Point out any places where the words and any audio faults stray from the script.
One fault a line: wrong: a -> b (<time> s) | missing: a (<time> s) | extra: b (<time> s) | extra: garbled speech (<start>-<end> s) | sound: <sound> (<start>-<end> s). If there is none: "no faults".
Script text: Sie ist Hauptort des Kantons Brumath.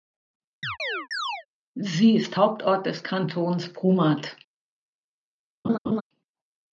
sound: chirp (0.6-1.5 s)
sound: laugh (5.6-6.0 s)